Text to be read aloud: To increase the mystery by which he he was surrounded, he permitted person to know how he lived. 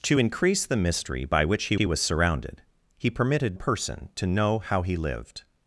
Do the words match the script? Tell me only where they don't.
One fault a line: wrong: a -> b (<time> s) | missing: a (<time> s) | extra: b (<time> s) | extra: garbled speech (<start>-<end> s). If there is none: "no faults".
no faults